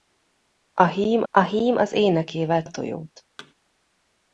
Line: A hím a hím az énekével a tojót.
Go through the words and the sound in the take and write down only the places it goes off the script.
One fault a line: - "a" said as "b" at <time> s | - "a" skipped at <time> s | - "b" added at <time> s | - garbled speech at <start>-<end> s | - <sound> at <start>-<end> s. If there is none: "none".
- thud at 3.4-3.5 s